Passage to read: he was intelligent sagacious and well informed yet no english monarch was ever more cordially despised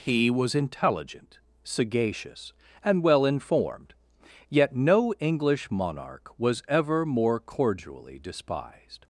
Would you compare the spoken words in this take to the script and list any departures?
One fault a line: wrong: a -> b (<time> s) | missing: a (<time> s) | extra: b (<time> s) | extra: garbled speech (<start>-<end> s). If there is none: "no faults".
no faults